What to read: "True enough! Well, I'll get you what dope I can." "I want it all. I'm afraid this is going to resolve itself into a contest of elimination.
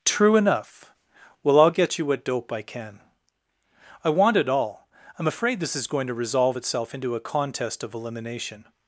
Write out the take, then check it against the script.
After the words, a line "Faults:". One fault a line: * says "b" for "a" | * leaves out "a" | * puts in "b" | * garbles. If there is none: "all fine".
"True enough! Well, I'll get you what dope I can." "I want it all. I'm afraid this is going to resolve itself into a contest of elimination.
Faults:
all fine